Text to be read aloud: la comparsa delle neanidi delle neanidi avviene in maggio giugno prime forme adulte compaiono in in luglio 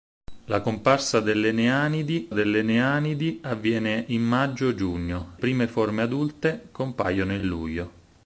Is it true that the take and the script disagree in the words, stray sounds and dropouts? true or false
false